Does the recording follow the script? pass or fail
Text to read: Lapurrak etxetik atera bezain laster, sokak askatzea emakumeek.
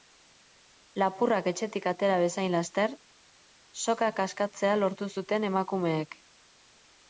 fail